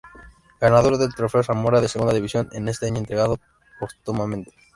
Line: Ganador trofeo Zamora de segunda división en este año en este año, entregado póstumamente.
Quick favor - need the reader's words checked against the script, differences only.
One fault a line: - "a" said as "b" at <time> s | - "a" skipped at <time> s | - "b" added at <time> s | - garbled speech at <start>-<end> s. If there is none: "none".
- "del" added at 1.0 s
- "en este año" skipped at 3.0 s